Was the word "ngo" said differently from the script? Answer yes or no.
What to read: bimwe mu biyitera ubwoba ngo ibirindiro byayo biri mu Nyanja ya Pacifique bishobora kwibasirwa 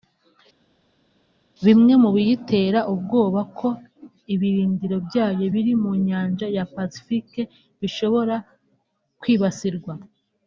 yes